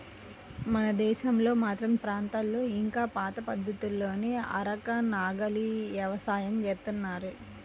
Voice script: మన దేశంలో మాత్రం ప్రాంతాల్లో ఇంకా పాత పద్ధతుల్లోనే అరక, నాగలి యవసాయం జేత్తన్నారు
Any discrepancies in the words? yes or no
no